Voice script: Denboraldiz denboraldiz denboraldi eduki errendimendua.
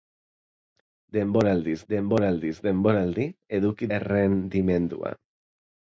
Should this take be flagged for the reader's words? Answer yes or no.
no